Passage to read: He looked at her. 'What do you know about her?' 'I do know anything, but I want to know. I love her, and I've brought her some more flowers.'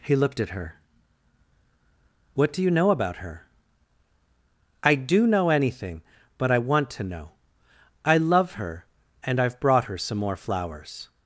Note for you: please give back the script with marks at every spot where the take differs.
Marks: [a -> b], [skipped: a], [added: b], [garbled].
He looked at her. 'What do you know about her?' 'I do know anything, but I want to know. I love her, and I've brought her some more flowers.'